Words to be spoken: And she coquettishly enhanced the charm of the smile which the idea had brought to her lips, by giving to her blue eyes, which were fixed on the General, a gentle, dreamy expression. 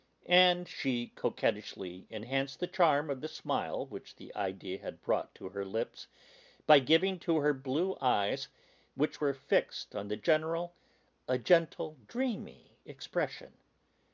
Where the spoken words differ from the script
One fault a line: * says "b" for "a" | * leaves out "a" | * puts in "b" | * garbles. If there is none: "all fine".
all fine